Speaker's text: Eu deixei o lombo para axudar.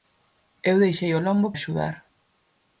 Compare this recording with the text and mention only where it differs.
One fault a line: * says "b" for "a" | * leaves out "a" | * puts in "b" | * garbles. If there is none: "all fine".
* leaves out "para"